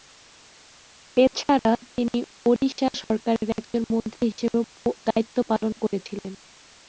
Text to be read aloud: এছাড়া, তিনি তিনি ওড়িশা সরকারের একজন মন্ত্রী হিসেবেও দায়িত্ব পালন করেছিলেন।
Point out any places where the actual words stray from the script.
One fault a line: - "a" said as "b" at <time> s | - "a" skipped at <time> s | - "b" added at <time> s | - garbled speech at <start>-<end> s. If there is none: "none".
- "তিনি" skipped at 2.2 s